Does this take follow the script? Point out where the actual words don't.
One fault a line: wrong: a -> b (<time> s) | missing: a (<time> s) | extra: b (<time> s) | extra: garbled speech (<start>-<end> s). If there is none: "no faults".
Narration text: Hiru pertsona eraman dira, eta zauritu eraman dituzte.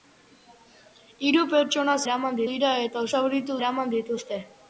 no faults